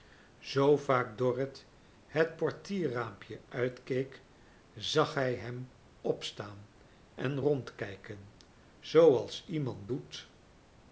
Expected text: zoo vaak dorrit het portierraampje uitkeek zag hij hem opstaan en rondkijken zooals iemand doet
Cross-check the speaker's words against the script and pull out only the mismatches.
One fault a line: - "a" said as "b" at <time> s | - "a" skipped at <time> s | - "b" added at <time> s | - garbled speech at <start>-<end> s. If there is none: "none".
none